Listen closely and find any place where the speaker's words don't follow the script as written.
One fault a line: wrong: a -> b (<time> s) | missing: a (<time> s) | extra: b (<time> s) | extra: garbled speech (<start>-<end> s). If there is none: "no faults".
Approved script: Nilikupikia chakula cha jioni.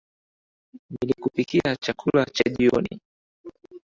no faults